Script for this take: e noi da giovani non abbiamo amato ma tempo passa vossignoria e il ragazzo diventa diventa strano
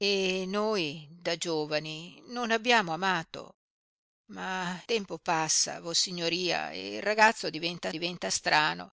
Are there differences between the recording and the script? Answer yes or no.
no